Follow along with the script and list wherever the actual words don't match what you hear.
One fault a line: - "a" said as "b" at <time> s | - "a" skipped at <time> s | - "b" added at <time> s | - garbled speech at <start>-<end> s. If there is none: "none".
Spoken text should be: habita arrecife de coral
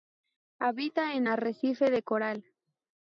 - "en" added at 1.1 s